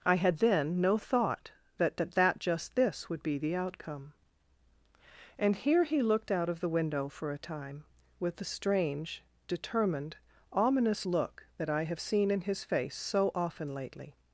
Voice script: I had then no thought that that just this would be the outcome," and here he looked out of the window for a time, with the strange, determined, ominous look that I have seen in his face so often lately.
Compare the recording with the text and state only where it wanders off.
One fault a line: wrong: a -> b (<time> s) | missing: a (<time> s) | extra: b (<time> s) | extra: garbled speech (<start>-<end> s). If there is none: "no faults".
extra: that (2.1 s)